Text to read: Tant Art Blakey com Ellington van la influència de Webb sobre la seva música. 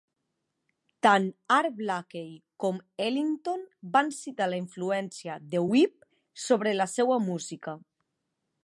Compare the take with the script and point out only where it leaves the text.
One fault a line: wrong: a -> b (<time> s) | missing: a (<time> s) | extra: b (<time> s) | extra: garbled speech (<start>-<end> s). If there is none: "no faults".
extra: citar (4.2 s)